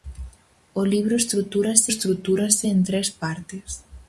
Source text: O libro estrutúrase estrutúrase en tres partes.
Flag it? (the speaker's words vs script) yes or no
no